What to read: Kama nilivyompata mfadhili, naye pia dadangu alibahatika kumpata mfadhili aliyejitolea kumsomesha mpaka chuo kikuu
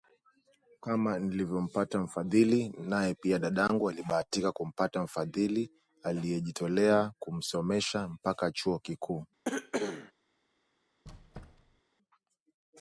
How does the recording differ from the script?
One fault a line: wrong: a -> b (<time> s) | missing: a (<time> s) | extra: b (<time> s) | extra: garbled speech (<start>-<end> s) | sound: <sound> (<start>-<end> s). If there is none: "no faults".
sound: cough (9.4-10.1 s)
sound: squeak (11.0-11.8 s)